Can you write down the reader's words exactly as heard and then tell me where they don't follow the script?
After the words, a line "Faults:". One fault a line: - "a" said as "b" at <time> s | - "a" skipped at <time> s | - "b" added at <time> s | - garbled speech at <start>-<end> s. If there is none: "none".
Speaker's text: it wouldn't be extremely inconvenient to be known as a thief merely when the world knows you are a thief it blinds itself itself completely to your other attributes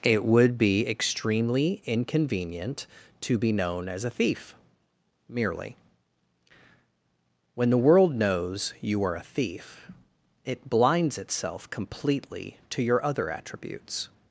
it would be extremely inconvenient to be known as a thief merely when the world knows you are a thief it blinds itself completely to your other attributes
Faults:
- "wouldn't" said as "would" at 0.2 s
- "itself" skipped at 11.7 s